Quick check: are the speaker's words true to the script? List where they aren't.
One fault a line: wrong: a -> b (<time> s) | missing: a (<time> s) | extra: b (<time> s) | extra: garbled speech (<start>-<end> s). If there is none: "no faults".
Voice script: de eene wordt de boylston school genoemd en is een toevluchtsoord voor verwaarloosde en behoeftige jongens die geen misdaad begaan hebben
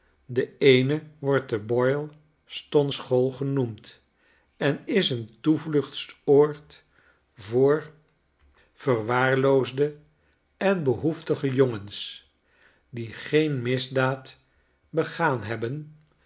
no faults